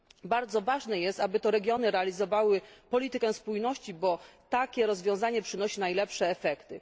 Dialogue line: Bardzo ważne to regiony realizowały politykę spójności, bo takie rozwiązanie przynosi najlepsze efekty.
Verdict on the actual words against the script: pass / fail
fail